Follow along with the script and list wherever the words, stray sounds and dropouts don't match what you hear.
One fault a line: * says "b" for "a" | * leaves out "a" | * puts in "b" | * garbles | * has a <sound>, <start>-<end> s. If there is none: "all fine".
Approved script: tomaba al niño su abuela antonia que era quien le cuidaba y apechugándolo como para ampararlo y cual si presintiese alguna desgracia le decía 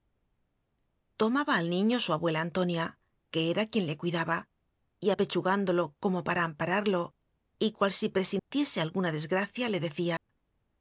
* has a dropout, 8.4-8.5 s
* has a dropout, 10.2-10.3 s